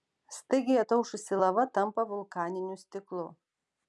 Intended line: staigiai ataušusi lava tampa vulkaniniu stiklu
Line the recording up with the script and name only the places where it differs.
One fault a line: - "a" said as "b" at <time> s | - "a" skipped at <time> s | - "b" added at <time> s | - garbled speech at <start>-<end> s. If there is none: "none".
none